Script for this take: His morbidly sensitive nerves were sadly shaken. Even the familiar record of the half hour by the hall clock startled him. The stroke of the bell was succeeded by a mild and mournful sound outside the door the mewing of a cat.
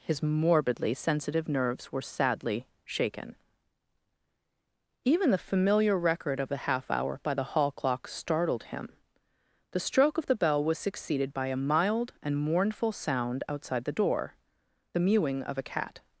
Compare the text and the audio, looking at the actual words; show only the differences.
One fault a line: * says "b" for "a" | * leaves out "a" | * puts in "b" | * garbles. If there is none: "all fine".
all fine